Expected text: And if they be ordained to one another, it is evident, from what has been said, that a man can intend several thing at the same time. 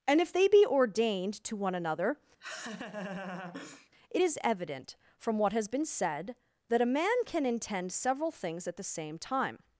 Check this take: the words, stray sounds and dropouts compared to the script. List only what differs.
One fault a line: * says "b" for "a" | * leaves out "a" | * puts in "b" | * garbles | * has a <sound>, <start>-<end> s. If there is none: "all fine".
* has a laugh, 2.4-3.9 s
* says "things" for "thing"